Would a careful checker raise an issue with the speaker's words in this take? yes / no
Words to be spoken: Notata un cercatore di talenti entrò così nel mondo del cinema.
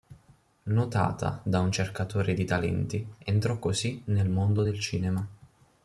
yes